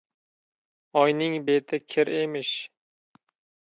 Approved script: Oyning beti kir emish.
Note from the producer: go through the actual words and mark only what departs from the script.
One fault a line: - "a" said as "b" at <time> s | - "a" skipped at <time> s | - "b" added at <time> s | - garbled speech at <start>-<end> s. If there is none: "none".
none